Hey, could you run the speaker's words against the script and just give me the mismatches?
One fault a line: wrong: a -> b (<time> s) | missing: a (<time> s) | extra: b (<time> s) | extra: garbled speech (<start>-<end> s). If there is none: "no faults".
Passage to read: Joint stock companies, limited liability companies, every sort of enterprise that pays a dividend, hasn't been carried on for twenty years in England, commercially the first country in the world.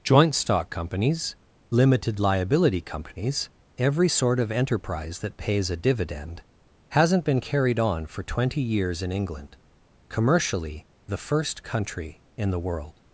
no faults